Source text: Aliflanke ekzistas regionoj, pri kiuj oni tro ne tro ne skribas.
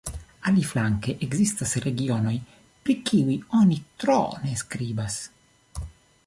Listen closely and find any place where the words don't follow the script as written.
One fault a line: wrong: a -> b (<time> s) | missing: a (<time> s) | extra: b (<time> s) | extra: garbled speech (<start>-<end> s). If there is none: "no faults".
missing: tro ne (4.6 s)